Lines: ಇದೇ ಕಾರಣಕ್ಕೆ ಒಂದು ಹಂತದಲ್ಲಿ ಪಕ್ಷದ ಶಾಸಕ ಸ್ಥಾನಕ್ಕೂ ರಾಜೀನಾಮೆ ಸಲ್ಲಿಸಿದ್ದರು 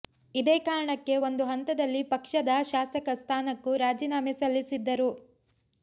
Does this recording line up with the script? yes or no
yes